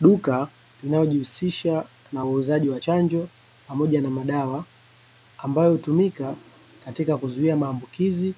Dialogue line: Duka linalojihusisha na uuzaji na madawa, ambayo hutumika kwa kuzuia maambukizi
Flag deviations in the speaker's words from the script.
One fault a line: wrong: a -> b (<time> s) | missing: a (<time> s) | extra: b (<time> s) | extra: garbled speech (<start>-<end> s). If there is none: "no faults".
extra: wa chanjo pamoja (2.7 s)
wrong: kwa -> katika (6.8 s)